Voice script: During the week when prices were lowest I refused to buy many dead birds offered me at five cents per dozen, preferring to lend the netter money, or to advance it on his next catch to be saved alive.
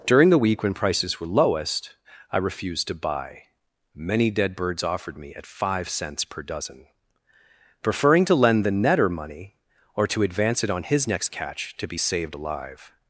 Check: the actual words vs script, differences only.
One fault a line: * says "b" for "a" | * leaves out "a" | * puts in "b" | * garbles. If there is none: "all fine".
all fine